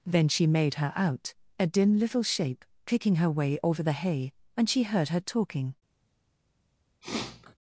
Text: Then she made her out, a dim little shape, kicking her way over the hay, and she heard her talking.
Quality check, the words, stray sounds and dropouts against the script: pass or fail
fail